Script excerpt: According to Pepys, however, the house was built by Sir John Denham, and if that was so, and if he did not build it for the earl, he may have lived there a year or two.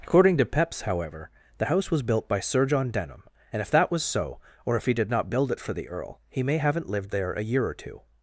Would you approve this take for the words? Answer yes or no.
no